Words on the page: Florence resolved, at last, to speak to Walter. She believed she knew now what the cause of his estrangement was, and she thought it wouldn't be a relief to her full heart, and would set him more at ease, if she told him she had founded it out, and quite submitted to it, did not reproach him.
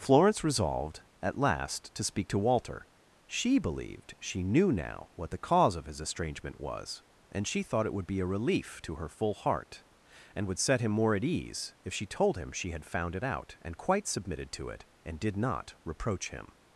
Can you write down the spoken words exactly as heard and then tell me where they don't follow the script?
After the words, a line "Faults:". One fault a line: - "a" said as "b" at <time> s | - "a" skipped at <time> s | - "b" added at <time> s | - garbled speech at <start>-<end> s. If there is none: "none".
Florence resolved, at last, to speak to Walter. She believed she knew now what the cause of his estrangement was, and she thought it would be a relief to her full heart, and would set him more at ease, if she told him she had found it out, and quite submitted to it, and did not reproach him.
Faults:
- "wouldn't" said as "would" at 7.9 s
- "founded" said as "found" at 12.8 s
- "and" added at 15.0 s